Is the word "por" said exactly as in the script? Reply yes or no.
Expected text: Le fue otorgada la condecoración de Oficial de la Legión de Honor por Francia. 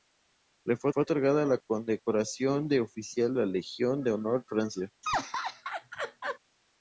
no